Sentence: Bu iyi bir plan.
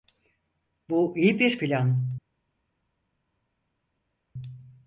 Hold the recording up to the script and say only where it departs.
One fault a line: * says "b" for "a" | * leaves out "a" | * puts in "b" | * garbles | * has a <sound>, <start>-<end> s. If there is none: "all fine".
all fine